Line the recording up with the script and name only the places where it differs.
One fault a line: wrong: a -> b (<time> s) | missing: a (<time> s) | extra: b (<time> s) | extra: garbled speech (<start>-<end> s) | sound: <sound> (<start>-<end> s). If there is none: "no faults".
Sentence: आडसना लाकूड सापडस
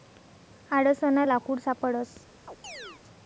sound: chirp (2.5-3.0 s)